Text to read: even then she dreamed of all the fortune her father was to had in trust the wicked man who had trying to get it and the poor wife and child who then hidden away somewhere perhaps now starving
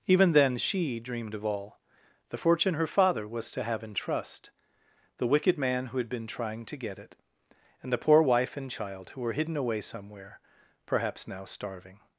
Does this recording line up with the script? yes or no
no